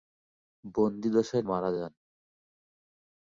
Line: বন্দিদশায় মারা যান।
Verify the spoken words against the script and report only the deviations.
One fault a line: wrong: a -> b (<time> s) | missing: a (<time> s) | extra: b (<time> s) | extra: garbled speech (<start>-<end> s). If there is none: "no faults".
no faults